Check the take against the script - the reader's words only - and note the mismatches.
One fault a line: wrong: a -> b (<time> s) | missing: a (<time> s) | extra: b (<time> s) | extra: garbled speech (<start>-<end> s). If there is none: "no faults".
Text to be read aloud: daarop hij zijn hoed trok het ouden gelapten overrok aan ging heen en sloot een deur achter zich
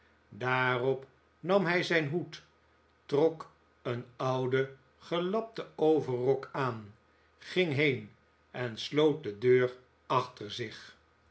extra: nam (1.4 s)
wrong: het -> een (3.8 s)
wrong: een -> de (9.2 s)